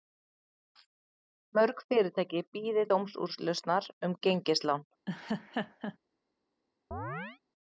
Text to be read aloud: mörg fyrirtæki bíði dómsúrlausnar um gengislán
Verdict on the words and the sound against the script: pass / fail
fail